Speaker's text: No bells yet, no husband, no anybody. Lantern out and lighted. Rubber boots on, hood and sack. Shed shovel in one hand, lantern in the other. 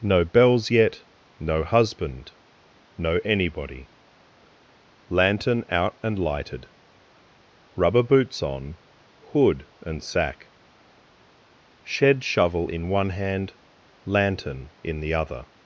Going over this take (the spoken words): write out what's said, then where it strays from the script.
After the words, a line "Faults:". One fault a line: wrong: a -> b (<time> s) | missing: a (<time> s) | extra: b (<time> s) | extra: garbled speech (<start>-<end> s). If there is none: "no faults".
No bells yet, no husband, no anybody. Lantern out and lighted. Rubber boots on, hood and sack. Shed shovel in one hand, lantern in the other.
Faults:
no faults